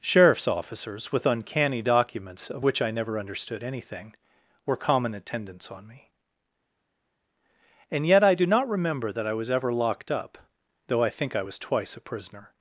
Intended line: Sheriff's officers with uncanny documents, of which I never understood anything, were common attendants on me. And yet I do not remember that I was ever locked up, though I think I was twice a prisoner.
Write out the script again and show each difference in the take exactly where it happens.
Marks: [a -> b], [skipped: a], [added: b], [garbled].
Sheriff's officers with uncanny documents, of which I never understood anything, were common attendants on me. And yet I do not remember that I was ever locked up, though I think I was twice a prisoner.